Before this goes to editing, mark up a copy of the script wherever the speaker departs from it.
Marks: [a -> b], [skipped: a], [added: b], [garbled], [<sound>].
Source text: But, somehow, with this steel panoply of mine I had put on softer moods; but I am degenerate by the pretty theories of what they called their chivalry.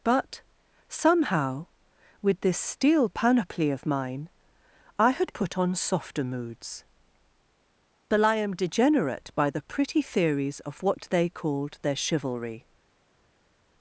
But, somehow, with this steel panoply of mine I had put on softer moods; but I am degenerate by the pretty theories of what they called their chivalry.